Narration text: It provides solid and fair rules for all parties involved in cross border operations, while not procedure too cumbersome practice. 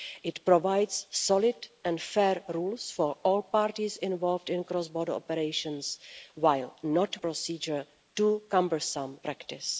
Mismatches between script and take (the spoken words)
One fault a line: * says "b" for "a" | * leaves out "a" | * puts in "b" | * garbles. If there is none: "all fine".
all fine